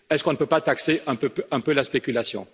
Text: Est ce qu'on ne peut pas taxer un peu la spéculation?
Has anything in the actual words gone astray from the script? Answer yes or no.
no